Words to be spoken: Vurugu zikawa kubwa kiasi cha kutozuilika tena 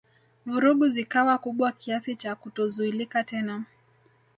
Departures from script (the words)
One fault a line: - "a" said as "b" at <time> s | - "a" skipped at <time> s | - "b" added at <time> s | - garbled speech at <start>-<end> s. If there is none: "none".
none